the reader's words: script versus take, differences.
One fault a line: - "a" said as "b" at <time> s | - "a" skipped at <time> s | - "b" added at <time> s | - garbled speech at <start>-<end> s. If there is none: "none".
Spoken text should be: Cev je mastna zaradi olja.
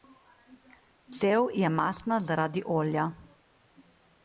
none